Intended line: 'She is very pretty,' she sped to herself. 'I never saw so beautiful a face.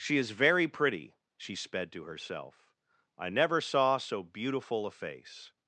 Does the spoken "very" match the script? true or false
true